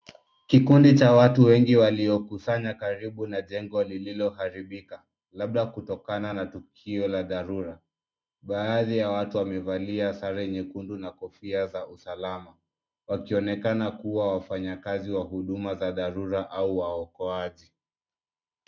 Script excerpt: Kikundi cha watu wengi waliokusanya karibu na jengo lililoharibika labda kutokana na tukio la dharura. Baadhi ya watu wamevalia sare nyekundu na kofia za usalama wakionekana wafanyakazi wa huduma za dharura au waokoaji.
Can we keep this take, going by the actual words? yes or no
no